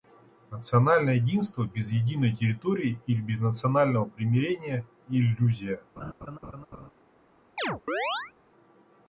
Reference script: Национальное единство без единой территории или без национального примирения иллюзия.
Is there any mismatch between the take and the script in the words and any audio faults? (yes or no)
yes